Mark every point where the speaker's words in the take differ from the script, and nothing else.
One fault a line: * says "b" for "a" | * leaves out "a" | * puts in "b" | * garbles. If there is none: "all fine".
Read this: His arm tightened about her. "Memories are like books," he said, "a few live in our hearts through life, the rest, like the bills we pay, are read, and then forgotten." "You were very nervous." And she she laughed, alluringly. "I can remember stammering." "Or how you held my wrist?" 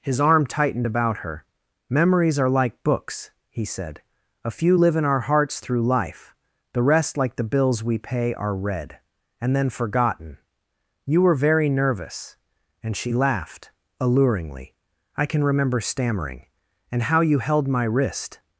* leaves out "she"
* says "And" for "Or"